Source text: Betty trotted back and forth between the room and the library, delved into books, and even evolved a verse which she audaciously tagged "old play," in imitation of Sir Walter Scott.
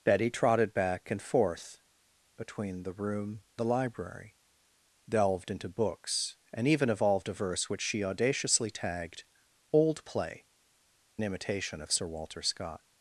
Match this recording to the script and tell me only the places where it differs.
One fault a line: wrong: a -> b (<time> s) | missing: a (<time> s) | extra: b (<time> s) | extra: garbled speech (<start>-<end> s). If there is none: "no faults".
missing: and (3.4 s)
missing: in (10.5 s)